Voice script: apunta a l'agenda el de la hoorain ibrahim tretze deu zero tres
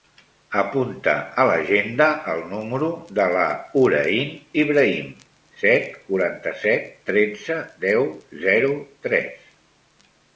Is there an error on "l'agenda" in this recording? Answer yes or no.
no